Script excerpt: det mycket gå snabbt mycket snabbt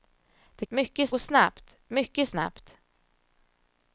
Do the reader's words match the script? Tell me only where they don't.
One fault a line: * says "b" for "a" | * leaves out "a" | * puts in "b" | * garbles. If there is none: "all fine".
all fine